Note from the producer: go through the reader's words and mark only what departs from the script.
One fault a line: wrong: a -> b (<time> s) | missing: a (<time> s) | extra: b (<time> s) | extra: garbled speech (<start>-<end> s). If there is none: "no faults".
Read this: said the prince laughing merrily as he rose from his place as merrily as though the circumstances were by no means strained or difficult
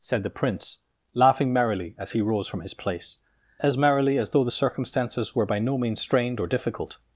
no faults